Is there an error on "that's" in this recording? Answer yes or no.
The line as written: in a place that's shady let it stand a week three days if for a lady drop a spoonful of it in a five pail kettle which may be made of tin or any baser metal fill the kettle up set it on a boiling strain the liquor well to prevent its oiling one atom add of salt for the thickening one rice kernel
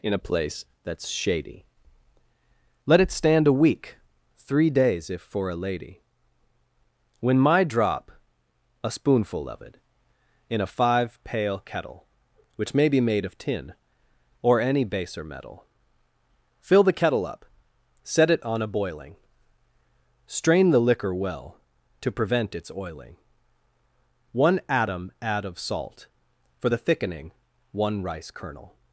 no